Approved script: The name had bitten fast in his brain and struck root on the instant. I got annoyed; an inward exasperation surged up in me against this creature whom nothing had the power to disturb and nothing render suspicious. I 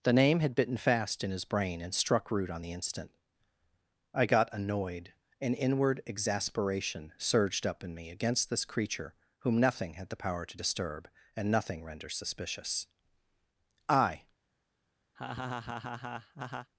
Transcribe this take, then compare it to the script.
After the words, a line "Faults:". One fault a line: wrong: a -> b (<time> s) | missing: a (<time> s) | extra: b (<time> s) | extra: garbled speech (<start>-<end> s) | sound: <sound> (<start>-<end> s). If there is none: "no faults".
The name had bitten fast in his brain and struck root on the instant. I got annoyed; an inward exasperation surged up in me against this creature whom nothing had the power to disturb and nothing render suspicious. I
Faults:
sound: laugh (15.2-16.7 s)